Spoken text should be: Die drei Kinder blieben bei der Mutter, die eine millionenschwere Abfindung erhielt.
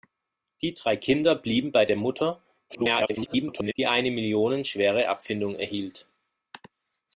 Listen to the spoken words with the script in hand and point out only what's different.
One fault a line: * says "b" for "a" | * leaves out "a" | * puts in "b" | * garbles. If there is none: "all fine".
* garbles